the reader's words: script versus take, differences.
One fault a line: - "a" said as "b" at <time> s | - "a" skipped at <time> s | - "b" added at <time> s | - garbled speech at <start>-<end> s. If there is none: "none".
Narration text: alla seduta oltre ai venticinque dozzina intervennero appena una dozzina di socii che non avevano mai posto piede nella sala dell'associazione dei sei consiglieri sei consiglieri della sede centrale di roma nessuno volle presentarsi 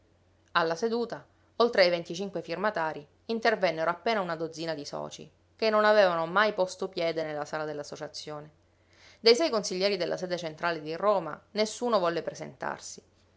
- "dozzina" said as "firmatarii" at 2.4 s
- "sei consiglieri" skipped at 10.0 s